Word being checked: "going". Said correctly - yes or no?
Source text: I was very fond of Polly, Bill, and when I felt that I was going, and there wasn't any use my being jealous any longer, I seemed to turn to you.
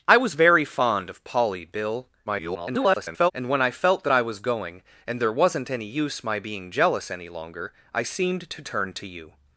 yes